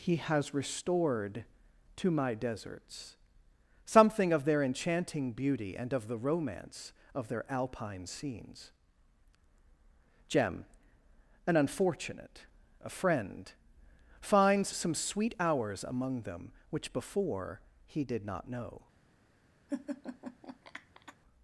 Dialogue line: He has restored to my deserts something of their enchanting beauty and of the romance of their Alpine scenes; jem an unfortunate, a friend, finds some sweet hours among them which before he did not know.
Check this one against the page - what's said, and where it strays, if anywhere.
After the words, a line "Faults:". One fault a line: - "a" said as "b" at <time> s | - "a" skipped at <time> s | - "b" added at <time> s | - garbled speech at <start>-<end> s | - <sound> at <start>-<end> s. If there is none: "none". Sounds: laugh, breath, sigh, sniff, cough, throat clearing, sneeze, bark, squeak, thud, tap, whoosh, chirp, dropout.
He has restored to my deserts something of their enchanting beauty and of the romance of their Alpine scenes; jem an unfortunate, a friend, finds some sweet hours among them which before he did not know.
Faults:
- laugh at 19.7-21.1 s